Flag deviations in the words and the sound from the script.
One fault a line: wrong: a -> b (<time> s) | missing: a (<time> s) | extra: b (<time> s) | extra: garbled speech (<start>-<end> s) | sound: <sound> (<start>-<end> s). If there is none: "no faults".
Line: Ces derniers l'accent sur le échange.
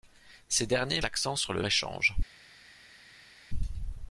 no faults